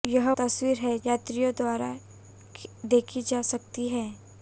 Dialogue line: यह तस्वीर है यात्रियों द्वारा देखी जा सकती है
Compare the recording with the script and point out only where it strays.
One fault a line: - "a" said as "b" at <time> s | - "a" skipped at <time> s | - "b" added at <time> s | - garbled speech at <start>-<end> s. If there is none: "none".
none